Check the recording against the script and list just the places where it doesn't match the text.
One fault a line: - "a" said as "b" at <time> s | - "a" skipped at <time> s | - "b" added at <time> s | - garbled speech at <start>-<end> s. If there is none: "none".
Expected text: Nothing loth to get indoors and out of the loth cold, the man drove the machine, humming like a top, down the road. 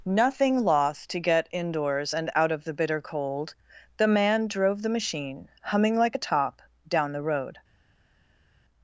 - "loth" said as "bitter" at 2.7 s